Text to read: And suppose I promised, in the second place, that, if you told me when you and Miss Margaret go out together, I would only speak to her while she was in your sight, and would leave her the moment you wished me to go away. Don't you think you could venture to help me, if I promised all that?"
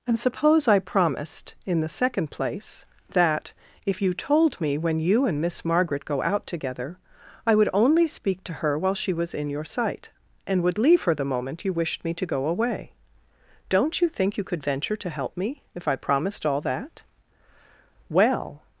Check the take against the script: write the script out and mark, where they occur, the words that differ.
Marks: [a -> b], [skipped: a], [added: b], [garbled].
And suppose I promised, in the second place, that, if you told me when you and Miss Margaret go out together, I would only speak to her while she was in your sight, and would leave her the moment you wished me to go away. Don't you think you could venture to help me, if I promised all that?" [added: Well]